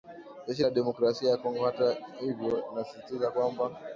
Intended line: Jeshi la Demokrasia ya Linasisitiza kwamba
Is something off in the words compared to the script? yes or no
yes